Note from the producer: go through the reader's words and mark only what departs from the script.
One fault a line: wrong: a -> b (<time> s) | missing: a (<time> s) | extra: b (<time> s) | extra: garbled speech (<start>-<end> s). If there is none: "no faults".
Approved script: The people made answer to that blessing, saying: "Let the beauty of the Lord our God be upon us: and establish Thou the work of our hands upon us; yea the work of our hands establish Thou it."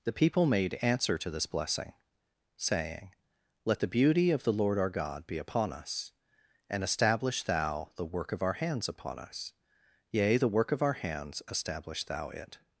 wrong: that -> this (1.3 s)